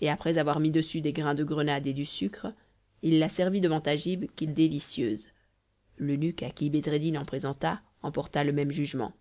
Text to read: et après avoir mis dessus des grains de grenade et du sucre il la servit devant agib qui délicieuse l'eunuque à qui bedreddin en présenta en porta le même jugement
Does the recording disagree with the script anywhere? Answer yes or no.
no